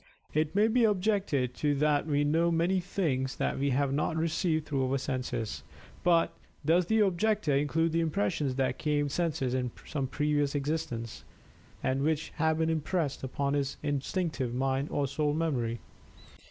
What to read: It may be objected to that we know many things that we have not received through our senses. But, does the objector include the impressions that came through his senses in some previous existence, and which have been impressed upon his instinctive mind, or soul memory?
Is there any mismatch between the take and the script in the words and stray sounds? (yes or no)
yes